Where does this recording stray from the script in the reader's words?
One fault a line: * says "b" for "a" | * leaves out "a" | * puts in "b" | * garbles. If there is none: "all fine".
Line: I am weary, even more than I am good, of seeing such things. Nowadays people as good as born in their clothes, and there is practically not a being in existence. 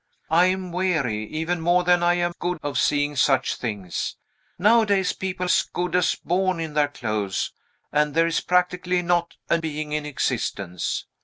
all fine